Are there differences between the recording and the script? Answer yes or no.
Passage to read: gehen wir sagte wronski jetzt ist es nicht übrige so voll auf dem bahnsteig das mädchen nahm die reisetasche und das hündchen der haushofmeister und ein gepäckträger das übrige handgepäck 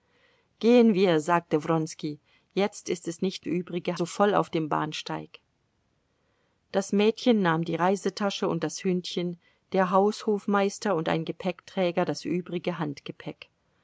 no